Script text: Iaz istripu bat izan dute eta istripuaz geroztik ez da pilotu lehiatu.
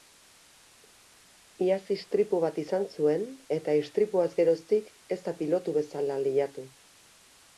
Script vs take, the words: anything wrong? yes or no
yes